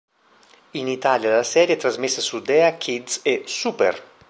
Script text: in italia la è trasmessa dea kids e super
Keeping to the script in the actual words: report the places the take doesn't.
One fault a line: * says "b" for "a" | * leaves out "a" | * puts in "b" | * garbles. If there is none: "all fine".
* puts in "serie"
* puts in "su"